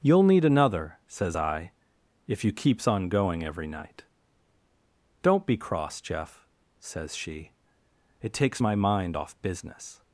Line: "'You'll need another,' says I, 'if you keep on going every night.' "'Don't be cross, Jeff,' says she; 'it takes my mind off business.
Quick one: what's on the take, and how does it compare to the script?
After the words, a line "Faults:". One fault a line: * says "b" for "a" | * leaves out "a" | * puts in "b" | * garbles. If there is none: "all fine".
"'You'll need another,' says I, 'if you keeps on going every night.' "'Don't be cross, Jeff,' says she; 'it takes my mind off business.
Faults:
* says "keeps" for "keep"